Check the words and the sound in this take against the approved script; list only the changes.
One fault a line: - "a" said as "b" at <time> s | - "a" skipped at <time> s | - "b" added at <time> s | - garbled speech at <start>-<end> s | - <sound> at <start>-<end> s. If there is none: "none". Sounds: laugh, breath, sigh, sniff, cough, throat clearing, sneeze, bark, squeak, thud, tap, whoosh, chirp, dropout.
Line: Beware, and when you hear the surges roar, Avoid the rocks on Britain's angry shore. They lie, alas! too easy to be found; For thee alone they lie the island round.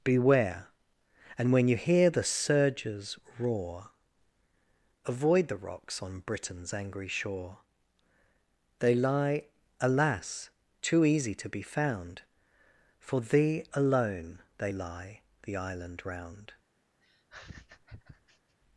- laugh at 17.0-18.6 s